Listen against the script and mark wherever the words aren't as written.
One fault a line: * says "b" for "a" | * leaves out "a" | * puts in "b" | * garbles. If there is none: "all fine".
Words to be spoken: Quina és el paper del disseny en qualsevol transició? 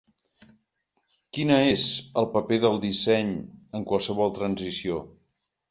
all fine